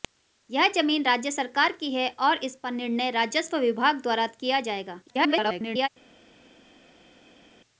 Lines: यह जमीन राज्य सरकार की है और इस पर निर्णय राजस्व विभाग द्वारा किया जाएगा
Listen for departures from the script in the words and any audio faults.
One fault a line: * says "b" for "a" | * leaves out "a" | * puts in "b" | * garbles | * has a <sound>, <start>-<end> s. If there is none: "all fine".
* garbles